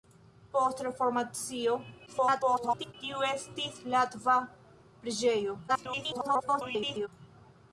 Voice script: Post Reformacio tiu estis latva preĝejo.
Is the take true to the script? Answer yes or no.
no